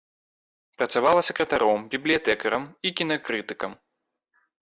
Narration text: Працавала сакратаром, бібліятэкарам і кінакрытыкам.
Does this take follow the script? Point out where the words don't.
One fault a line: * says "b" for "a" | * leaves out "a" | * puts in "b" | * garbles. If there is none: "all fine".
all fine